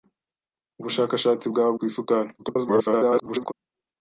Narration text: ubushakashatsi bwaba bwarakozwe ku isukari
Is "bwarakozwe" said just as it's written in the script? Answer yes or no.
no